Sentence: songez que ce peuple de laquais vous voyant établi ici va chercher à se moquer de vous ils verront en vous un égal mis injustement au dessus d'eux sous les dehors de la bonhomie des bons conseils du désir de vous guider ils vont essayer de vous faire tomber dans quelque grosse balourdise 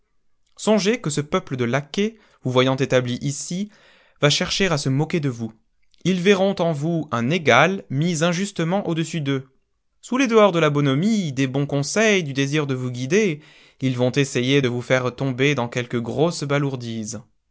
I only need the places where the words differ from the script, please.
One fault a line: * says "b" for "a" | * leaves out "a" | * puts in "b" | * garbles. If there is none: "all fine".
all fine